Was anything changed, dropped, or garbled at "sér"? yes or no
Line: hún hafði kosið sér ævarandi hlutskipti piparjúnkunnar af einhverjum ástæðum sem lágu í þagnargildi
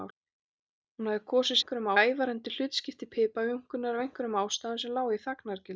yes